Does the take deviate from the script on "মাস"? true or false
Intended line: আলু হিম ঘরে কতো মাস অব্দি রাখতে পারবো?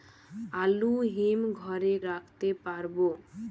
true